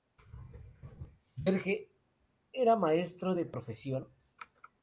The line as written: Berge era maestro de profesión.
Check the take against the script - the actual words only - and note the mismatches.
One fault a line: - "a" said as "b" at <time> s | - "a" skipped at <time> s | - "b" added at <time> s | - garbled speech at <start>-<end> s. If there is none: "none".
none